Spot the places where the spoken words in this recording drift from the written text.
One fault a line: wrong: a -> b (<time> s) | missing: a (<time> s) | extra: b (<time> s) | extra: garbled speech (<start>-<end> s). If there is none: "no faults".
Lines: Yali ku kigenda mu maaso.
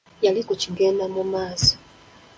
no faults